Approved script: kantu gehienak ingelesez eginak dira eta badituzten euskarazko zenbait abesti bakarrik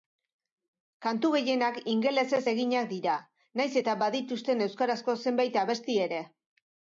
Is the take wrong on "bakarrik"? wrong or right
wrong